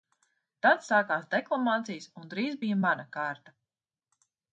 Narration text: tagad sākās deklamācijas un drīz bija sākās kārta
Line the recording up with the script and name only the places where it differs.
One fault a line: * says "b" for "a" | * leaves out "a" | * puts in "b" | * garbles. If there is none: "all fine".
* says "tad" for "tagad"
* says "mana" for "sākās"